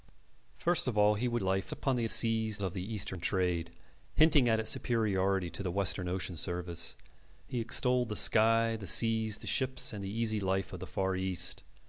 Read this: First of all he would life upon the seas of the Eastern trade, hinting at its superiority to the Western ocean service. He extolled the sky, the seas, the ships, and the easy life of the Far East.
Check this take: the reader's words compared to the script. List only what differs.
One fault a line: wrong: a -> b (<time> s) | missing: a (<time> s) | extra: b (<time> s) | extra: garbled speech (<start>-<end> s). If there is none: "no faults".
no faults